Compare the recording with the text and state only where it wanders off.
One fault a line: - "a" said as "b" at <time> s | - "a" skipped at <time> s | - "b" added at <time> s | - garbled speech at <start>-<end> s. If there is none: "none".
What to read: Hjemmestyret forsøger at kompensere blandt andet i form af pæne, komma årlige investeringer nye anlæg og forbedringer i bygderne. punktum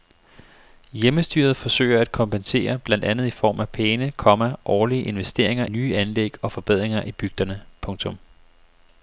none